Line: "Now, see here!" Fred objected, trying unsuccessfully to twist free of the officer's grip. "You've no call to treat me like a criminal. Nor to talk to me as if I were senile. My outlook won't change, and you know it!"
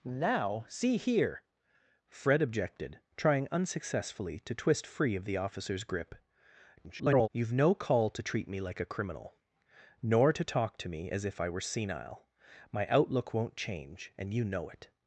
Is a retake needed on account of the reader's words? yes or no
yes